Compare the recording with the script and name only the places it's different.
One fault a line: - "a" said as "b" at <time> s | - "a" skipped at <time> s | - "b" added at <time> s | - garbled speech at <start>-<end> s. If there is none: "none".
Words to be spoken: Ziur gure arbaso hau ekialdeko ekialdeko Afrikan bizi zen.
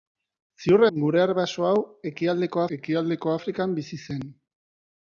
none